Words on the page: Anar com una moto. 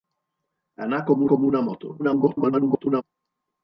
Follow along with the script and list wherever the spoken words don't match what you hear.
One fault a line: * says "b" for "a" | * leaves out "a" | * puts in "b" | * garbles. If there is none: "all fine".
* puts in "com"
* garbles